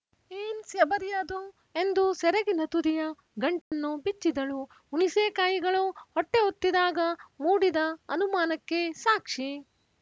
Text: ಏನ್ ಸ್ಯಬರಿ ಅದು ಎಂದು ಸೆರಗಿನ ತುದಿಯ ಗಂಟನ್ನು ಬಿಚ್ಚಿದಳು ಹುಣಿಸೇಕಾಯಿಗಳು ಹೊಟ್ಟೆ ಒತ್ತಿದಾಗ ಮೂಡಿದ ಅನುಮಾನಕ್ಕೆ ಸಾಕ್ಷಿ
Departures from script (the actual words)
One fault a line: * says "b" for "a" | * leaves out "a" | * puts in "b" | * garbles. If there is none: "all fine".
all fine